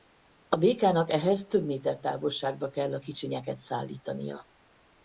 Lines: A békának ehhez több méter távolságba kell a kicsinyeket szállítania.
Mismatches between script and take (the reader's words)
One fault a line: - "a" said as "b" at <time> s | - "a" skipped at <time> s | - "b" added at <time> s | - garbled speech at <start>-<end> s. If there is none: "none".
none